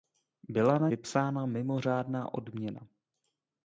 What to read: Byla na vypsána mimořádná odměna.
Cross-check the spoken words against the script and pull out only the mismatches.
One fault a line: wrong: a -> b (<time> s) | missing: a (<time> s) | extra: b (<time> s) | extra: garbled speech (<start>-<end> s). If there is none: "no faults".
no faults